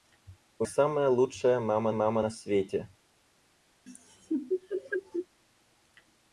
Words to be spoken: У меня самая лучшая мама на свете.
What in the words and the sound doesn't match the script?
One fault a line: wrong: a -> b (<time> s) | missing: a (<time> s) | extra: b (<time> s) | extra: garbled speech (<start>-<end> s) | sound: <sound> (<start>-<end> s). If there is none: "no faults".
missing: меня (0.7 s)
extra: мама (1.9 s)
sound: laugh (3.9-5.3 s)